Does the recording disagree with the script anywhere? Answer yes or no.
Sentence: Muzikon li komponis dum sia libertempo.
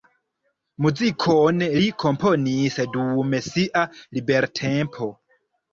no